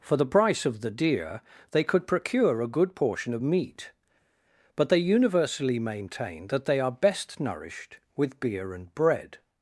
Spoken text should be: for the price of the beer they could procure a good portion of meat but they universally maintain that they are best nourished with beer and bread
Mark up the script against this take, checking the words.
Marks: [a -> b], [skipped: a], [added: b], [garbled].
for the price of the [beer -> deer] they could procure a good portion of meat but they universally maintain that they are best nourished with beer and bread